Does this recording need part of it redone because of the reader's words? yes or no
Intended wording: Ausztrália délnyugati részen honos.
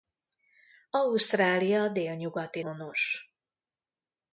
yes